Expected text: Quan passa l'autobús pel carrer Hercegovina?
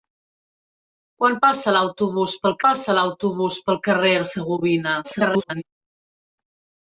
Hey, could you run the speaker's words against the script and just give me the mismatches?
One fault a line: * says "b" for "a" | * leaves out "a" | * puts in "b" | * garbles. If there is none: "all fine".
* puts in "passa l'autobús pel"
* garbles